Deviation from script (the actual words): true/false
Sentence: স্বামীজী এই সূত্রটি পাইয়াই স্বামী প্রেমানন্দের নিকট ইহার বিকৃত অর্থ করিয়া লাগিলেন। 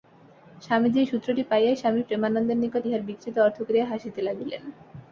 true